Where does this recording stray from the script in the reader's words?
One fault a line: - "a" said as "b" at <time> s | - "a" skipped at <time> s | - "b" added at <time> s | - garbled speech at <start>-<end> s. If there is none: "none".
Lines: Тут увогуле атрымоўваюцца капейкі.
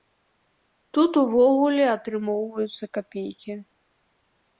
none